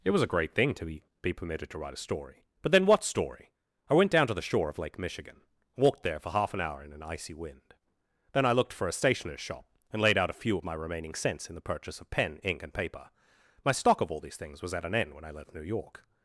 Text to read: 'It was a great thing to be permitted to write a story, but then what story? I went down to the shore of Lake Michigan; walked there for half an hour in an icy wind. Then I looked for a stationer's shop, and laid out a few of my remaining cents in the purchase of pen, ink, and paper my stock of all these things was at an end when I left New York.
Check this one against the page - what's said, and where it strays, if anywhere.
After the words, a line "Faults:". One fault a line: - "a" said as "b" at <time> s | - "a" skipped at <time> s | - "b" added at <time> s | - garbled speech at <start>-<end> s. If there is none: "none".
'It was a great thing to be be permitted to write a story, but then what story? I went down to the shore of Lake Michigan; walked there for half an hour in an icy wind. Then I looked for a stationer's shop, and laid out a few of my remaining cents in the purchase of pen, ink, and paper my stock of all these things was at an end when I left New York.
Faults:
- "be" added at 1.2 s